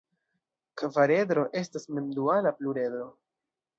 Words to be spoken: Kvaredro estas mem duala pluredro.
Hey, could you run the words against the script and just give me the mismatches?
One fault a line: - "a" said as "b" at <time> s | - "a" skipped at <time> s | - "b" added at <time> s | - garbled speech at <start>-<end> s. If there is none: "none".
none